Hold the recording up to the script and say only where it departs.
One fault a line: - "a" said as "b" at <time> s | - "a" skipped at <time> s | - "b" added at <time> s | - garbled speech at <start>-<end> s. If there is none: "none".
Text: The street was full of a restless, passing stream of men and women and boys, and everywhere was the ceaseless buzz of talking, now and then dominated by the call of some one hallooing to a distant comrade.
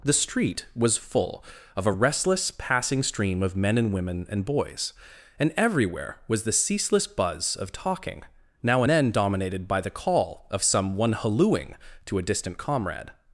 - "and" skipped at 8.8 s